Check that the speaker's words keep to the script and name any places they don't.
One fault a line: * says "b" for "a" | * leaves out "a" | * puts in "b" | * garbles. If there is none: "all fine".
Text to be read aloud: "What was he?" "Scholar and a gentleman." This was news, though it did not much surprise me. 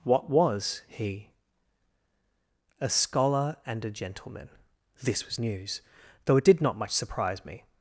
* puts in "A"